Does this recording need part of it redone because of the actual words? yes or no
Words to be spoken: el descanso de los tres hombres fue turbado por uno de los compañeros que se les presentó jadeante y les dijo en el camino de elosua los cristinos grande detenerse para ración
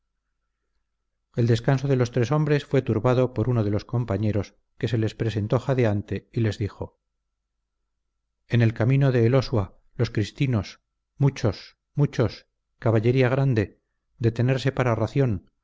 yes